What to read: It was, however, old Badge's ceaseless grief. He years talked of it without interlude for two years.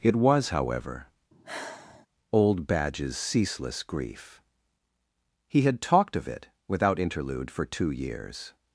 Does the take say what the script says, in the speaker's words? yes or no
no